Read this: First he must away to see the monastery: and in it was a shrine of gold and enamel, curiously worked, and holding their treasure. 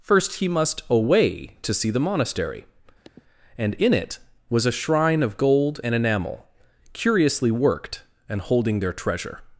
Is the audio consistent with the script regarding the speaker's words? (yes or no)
yes